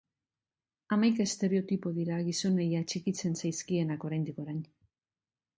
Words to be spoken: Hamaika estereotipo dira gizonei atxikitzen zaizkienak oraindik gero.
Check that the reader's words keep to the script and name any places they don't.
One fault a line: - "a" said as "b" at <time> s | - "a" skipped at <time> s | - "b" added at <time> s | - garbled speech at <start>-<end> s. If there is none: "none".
- "gero" said as "orain" at 4.5 s